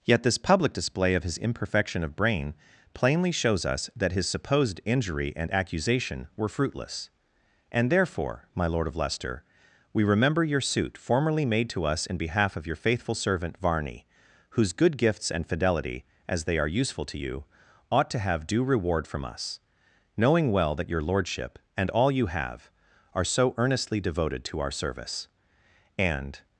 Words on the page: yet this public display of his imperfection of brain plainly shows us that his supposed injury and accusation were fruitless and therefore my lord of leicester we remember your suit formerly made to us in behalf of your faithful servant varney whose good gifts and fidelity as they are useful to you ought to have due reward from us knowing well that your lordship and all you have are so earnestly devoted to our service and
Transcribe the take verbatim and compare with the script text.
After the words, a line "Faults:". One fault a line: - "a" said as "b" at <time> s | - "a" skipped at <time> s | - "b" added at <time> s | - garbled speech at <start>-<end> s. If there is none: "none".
yet this public display of his imperfection of brain plainly shows us that his supposed injury and accusation were fruitless and therefore my lord of leicester we remember your suit formerly made to us in behalf of your faithful servant varney whose good gifts and fidelity as they are useful to you ought to have due reward from us knowing well that your lordship and all you have are so earnestly devoted to our service and
Faults:
none